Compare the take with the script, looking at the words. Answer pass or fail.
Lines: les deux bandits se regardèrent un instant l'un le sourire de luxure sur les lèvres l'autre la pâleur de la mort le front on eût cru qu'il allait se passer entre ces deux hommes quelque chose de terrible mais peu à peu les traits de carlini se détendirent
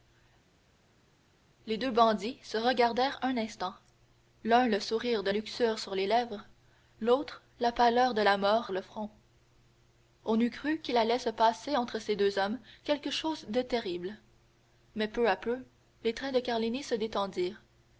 pass